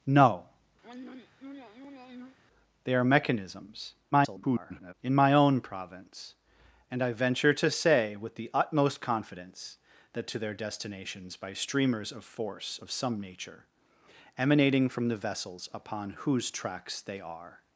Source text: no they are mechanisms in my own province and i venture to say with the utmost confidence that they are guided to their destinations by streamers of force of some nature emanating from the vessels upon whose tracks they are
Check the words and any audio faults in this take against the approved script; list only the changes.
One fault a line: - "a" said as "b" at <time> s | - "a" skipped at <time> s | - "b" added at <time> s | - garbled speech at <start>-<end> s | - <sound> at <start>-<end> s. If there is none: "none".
- throat clearing at 0.8-2.4 s
- garbled speech at 4.1-4.9 s
- "they are guided" skipped at 10.3 s